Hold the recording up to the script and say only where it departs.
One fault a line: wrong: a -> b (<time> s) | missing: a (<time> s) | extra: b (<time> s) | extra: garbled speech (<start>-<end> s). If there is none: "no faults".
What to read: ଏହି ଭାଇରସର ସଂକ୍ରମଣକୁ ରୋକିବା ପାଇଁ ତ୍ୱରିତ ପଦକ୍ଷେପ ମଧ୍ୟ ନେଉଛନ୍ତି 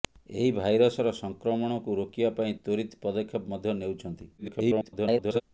extra: garbled speech (4.4-5.4 s)